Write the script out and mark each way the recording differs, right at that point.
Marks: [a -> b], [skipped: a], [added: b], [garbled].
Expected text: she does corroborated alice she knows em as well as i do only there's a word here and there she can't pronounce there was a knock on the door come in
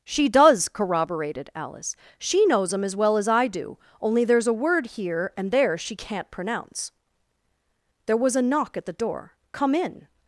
she does corroborated alice she knows em as well as i do only there's a word here and there she can't pronounce there was a knock [on -> at] the door come in